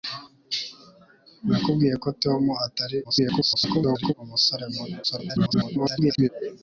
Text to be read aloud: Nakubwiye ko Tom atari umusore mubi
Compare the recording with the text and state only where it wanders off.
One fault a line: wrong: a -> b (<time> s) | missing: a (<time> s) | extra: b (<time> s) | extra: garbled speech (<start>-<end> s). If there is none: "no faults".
extra: garbled speech (3.0-4.1 s)
extra: garbled speech (5.0-6.3 s)